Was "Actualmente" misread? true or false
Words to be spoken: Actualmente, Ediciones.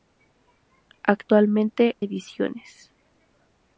false